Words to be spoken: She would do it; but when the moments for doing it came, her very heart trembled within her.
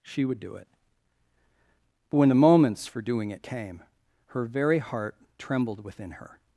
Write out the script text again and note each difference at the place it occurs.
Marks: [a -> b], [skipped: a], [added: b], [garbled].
She would do it; but when the moments for doing it came, her very heart trembled within her.